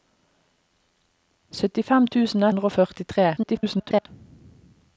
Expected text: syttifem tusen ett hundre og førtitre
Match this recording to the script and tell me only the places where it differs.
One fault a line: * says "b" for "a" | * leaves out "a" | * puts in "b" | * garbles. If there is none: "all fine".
* leaves out "ett"
* garbles